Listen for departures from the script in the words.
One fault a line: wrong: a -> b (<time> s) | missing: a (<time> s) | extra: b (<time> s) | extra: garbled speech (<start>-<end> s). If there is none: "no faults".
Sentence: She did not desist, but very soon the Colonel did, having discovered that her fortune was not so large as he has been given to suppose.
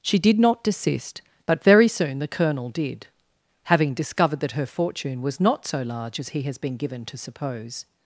no faults